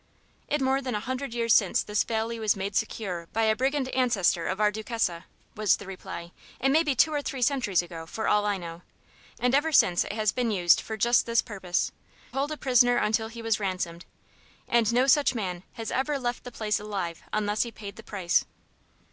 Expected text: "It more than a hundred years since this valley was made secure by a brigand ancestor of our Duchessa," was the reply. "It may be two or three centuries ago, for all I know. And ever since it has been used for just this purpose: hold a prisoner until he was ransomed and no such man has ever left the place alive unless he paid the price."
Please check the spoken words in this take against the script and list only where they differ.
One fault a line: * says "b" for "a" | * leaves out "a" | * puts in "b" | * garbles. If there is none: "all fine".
all fine